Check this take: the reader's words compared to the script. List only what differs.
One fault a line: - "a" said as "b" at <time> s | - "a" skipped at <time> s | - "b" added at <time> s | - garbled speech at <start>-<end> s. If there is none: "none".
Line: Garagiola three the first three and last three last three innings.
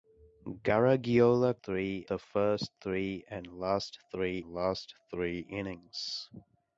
none